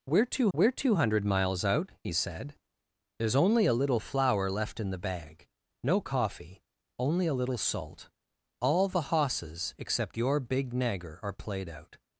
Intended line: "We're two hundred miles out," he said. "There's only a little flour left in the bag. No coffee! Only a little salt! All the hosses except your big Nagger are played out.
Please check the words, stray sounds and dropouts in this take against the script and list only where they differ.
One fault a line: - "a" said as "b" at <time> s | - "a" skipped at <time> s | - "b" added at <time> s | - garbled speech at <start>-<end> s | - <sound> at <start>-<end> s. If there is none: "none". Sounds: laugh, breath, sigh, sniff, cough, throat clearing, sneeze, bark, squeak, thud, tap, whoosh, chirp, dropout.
- "we're two" added at 0.5 s